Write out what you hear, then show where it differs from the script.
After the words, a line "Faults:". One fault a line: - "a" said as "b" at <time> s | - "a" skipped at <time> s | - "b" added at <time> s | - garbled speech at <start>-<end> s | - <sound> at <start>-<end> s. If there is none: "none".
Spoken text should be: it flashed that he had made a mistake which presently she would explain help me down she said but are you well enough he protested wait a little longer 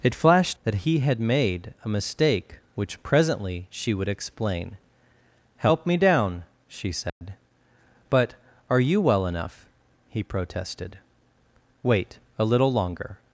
it flashed that he had made a mistake which presently she would explain help me down she said but are you well enough he protested wait a little longer
Faults:
- dropout at 7.1-7.2 s